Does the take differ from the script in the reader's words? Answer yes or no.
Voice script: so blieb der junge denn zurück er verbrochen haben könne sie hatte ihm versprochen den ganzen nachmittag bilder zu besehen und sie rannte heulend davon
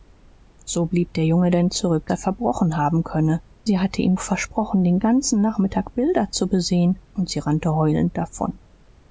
no